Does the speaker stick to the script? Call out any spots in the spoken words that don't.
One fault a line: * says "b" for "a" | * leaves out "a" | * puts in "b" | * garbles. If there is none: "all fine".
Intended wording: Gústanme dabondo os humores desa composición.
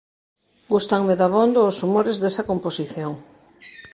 all fine